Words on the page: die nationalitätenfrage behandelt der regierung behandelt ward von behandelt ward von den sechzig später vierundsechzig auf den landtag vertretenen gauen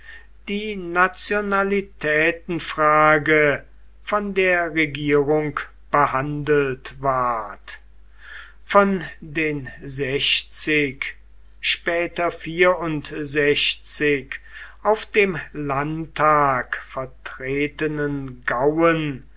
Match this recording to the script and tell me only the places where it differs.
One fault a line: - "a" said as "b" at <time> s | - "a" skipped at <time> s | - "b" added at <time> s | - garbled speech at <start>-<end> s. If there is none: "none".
- "behandelt" said as "von" at 4.0 s
- "behandelt ward von" skipped at 9.0 s
- "den" said as "dem" at 15.1 s